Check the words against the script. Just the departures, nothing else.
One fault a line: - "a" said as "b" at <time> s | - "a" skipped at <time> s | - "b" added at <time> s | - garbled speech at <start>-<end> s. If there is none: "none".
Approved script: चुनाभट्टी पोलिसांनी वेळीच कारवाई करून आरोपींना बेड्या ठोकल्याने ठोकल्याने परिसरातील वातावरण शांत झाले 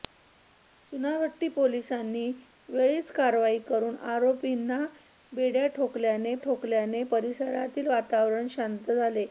none